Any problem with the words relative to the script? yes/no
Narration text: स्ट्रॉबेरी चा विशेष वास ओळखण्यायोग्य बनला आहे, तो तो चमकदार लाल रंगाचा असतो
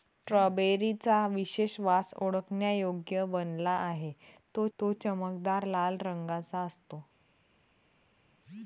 no